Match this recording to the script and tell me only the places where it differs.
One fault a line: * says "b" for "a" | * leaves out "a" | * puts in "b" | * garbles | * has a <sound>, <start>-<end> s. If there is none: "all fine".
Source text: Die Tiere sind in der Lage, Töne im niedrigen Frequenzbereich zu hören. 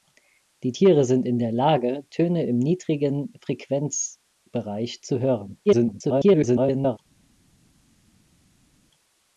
* garbles